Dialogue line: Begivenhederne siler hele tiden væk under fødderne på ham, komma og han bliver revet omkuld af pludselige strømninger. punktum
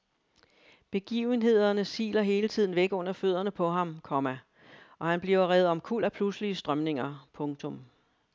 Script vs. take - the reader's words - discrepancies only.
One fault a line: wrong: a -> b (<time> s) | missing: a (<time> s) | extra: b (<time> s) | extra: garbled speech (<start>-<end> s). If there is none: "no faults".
no faults